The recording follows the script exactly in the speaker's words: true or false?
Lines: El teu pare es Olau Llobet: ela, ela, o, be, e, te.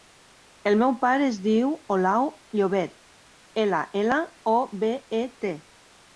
false